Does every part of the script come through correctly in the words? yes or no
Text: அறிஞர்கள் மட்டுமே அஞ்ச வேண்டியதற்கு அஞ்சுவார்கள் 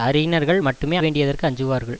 no